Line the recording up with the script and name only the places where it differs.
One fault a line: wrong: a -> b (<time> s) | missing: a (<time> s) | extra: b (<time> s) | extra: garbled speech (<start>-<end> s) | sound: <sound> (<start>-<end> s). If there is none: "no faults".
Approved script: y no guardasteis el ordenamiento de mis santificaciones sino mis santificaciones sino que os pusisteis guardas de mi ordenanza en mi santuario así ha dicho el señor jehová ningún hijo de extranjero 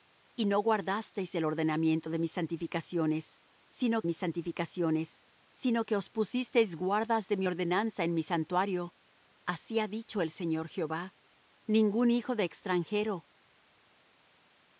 no faults